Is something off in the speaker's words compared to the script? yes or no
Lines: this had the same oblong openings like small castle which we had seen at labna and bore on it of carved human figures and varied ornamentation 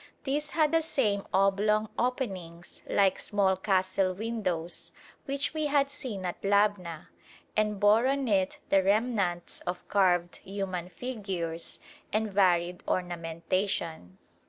yes